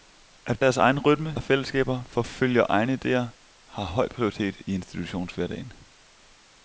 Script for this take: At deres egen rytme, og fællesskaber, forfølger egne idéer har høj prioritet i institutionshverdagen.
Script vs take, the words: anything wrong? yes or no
no